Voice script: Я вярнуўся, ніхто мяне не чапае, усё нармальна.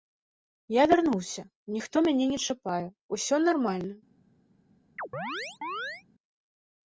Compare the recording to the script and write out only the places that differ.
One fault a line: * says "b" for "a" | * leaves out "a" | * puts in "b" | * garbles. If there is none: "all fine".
all fine